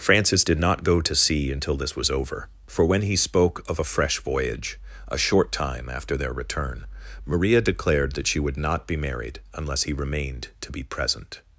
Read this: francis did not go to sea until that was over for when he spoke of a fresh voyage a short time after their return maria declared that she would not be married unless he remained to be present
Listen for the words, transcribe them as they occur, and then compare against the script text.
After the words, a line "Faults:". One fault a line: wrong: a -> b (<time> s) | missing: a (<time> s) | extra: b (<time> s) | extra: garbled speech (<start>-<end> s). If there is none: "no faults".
francis did not go to sea until this was over for when he spoke of a fresh voyage a short time after their return maria declared that she would not be married unless he remained to be present
Faults:
wrong: that -> this (1.8 s)